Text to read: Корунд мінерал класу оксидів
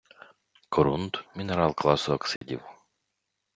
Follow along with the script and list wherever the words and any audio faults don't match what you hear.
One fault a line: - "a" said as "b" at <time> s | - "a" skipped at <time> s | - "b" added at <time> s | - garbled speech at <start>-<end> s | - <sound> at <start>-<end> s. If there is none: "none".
- dropout at 2.4-2.4 s